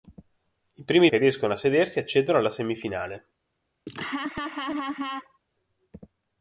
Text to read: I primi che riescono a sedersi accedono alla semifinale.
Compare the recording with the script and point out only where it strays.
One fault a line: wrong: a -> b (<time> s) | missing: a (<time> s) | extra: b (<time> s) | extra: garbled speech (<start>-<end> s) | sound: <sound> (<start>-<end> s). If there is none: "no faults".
sound: laugh (3.9-5.4 s)